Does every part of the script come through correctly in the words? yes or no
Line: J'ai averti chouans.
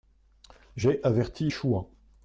yes